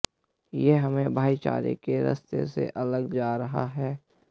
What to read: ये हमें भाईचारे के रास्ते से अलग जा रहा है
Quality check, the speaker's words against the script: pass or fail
pass